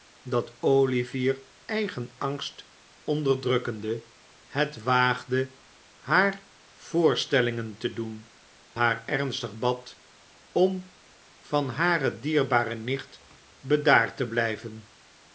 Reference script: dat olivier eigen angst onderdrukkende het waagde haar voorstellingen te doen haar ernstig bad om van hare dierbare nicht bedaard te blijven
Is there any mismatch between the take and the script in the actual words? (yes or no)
no